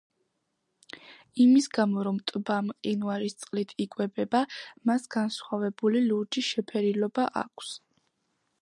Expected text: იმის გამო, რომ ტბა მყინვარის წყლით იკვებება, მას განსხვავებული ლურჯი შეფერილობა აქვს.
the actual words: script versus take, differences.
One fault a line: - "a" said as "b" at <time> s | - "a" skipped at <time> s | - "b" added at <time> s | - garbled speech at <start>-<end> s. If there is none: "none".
none